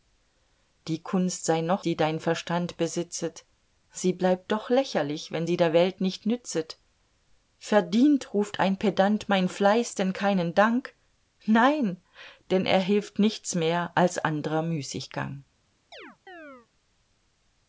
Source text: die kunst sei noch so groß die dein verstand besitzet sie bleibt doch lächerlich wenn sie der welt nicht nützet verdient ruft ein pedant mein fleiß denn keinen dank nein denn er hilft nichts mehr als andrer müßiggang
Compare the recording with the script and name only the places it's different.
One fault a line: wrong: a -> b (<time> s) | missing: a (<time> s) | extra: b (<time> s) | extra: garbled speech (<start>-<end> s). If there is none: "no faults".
missing: so groß (1.9 s)